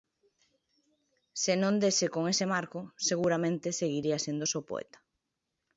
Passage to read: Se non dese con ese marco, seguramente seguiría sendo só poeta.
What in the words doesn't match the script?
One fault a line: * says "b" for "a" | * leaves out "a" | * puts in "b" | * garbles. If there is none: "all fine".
all fine